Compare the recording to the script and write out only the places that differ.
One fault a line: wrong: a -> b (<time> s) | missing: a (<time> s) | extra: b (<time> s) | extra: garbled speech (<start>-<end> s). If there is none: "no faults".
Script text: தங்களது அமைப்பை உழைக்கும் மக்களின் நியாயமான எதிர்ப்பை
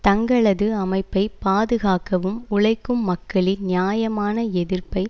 extra: பாதுகாக்கவும் (1.4 s)